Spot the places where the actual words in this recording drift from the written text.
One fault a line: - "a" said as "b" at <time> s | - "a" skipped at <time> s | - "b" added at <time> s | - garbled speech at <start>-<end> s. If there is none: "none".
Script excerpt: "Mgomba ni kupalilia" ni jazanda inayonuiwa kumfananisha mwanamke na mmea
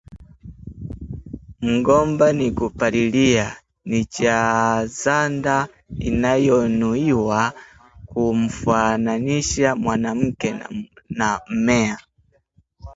none